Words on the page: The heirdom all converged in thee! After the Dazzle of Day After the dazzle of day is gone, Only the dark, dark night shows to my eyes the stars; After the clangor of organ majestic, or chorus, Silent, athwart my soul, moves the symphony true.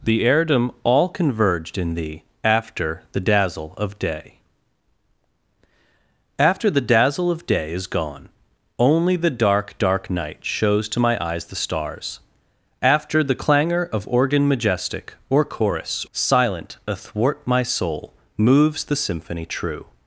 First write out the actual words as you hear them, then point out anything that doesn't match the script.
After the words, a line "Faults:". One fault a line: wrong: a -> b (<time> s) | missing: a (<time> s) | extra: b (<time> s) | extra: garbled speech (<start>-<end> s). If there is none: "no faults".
The heirdom all converged in thee! After the Dazzle of Day After the dazzle of day is gone, Only the dark, dark night shows to my eyes the stars; After the clangor of organ majestic, or chorus, Silent, athwart my soul, moves the symphony true.
Faults:
no faults